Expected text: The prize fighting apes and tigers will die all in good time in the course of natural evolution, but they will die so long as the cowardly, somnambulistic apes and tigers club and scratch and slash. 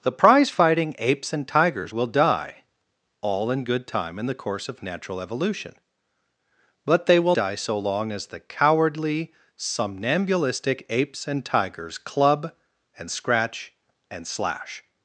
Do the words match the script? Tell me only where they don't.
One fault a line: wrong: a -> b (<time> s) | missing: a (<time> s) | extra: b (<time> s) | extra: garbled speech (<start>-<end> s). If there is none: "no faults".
no faults